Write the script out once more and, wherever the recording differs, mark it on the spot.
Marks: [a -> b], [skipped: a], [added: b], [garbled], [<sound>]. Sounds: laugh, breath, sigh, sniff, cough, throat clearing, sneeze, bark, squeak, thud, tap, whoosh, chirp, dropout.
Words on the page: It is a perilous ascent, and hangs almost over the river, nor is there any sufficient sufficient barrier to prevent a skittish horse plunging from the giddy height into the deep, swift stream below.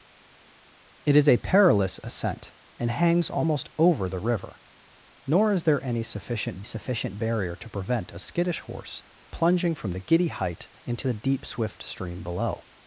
It is a perilous ascent, and hangs almost over the river, nor is there any sufficient sufficient barrier to prevent a skittish horse plunging from the giddy height into the deep, swift stream below.